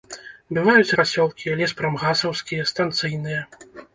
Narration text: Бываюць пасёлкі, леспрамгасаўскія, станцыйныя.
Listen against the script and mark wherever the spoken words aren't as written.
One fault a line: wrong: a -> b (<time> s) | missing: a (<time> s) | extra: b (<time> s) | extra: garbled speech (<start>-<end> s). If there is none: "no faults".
no faults